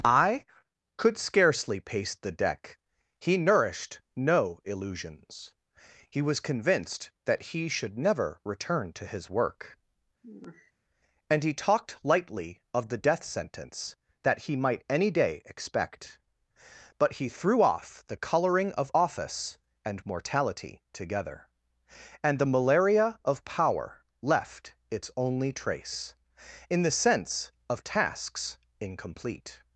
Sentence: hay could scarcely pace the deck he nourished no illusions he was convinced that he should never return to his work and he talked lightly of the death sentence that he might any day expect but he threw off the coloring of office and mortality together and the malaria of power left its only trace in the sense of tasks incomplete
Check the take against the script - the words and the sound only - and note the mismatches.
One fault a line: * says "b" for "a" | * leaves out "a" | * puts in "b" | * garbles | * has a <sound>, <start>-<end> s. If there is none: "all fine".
* says "i" for "hay"
* has a sigh, 10.2-10.7 s